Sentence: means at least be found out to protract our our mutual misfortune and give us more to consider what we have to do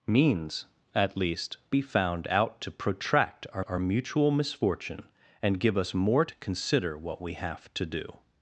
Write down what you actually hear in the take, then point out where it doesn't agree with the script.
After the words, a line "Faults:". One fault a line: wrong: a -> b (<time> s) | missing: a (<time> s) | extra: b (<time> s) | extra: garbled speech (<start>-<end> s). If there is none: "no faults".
means at least be found out to protract our our mutual misfortune and give us more to consider what we have to do
Faults:
no faults